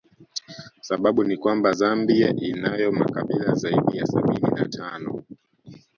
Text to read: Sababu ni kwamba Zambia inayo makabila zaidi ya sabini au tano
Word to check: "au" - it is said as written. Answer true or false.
false